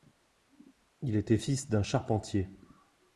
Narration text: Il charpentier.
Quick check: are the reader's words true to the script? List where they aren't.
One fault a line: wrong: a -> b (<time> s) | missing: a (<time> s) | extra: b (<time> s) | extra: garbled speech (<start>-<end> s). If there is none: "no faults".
extra: était fils d'un (1.1 s)